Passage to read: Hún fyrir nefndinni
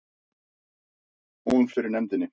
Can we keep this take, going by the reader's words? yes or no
yes